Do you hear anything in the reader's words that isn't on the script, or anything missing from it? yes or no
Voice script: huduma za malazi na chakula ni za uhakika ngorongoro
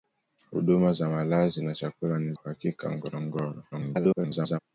yes